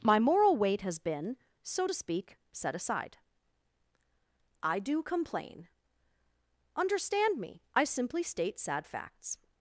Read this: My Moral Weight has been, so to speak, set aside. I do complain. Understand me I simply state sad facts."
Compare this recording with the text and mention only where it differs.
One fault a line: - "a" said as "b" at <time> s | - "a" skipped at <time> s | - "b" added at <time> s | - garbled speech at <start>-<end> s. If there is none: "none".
none